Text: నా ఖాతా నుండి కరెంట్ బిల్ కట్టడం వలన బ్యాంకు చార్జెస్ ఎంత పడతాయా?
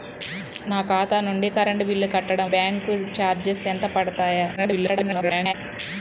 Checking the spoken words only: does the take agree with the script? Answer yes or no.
no